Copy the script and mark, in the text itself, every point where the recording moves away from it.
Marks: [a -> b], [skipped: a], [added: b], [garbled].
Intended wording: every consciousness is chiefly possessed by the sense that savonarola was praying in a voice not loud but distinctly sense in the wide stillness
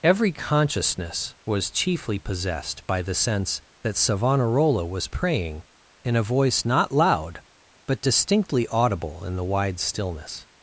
every consciousness [is -> was] chiefly possessed by the sense that savonarola was praying in a voice not loud but distinctly [sense -> audible] in the wide stillness